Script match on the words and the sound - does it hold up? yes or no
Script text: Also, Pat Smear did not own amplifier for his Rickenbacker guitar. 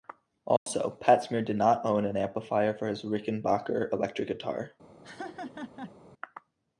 no